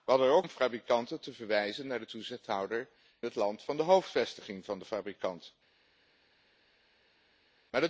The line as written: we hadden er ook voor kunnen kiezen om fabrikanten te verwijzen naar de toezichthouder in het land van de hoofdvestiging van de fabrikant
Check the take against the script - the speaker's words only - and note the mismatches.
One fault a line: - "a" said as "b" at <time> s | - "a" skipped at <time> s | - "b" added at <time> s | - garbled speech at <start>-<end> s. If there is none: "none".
- "voor kunnen kiezen" skipped at 0.5 s
- "in" skipped at 2.9 s